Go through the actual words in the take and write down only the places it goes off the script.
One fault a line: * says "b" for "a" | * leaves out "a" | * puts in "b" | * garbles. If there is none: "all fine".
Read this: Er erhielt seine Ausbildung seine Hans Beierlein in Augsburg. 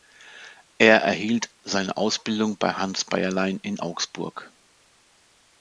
* says "bei" for "seine"